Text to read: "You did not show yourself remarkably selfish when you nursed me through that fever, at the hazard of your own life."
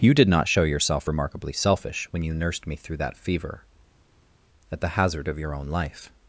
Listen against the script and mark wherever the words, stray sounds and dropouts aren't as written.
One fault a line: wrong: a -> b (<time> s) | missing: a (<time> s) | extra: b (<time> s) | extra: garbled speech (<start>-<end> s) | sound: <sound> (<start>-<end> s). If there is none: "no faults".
no faults